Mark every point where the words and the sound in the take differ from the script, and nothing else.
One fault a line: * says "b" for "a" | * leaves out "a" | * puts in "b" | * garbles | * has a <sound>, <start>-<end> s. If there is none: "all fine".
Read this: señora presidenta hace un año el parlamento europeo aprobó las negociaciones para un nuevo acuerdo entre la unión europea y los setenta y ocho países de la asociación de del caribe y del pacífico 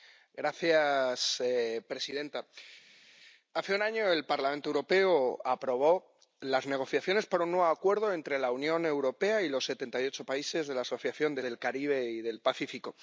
all fine